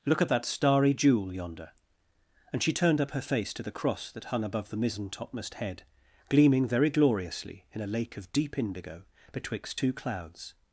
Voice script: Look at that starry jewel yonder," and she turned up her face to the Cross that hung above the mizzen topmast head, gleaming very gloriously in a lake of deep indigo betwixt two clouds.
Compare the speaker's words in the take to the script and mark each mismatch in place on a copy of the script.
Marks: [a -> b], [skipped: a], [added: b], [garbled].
Look at that starry jewel yonder," and she turned up her face to the Cross that hung above the mizzen topmast head, gleaming very gloriously in a lake of deep indigo betwixt two clouds.